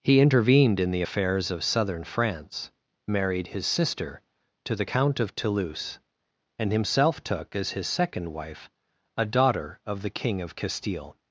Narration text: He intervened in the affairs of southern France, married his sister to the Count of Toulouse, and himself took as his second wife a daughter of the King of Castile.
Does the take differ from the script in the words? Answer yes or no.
no